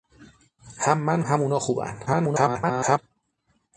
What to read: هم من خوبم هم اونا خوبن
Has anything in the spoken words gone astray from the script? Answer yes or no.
yes